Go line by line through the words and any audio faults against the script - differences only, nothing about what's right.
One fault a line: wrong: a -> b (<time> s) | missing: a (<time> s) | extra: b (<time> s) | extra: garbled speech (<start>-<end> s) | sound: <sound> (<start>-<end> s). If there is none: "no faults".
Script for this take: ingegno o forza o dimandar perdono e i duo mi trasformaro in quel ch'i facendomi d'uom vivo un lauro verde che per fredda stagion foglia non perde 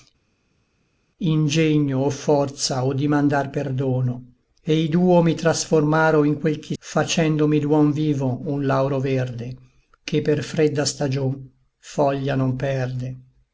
no faults